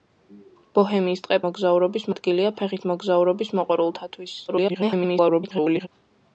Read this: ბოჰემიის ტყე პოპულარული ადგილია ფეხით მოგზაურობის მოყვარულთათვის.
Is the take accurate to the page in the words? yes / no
no